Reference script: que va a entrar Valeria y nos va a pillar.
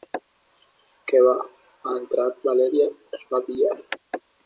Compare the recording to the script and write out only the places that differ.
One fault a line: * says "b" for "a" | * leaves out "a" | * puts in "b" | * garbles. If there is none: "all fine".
all fine